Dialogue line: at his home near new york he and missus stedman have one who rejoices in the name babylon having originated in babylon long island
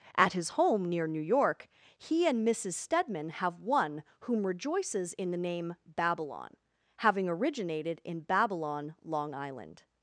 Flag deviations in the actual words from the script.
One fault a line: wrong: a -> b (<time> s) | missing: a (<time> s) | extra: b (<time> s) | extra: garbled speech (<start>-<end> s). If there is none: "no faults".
wrong: who -> whom (4.2 s)